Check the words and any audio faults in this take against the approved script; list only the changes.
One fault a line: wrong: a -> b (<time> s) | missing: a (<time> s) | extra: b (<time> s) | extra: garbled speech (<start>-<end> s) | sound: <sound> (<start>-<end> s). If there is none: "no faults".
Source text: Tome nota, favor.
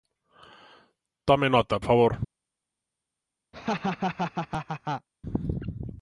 sound: laugh (3.5-5.1 s)